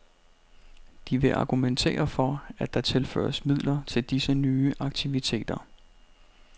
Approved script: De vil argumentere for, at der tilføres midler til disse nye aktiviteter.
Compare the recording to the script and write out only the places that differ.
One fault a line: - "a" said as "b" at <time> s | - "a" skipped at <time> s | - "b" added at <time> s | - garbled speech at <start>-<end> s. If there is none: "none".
none